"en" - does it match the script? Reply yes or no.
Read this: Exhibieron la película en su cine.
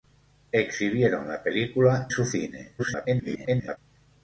no